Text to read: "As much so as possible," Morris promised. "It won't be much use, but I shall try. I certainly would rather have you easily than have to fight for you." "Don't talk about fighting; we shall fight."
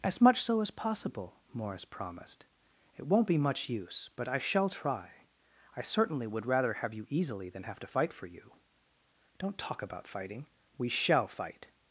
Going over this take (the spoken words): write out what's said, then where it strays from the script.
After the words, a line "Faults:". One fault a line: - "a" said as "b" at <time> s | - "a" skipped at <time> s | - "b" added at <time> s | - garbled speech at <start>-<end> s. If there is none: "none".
"As much so as possible," Morris promised. "It won't be much use, but I shall try. I certainly would rather have you easily than have to fight for you." "Don't talk about fighting; we shall fight."
Faults:
none